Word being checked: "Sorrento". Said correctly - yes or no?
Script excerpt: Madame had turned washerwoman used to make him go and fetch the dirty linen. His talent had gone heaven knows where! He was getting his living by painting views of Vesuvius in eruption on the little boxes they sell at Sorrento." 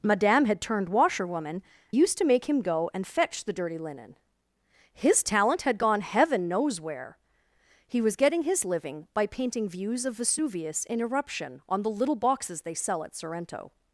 yes